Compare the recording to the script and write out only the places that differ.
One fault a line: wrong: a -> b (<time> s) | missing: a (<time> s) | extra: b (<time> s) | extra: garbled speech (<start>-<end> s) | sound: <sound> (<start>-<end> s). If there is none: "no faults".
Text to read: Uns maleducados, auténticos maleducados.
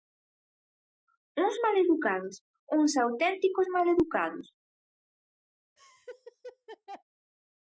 extra: uns (2.7 s)
sound: laugh (5.8-7.0 s)